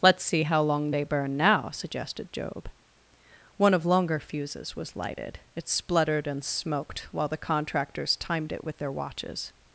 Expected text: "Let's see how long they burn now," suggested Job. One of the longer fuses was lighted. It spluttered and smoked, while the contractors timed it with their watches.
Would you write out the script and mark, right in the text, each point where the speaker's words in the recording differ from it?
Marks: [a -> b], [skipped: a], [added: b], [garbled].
"Let's see how long they burn now," suggested Job. One of [skipped: the] longer fuses was lighted. It spluttered and smoked, while the contractors timed it with their watches.